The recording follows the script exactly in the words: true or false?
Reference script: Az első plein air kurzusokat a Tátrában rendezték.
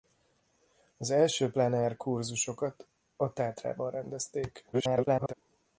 false